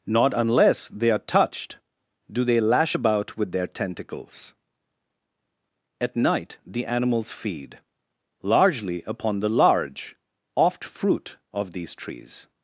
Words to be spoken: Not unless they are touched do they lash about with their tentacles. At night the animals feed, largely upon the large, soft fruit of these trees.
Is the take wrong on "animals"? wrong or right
right